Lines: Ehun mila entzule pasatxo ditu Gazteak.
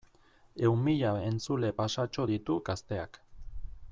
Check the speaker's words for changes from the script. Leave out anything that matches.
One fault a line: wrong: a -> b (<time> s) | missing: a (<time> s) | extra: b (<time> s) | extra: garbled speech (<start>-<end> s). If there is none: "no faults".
no faults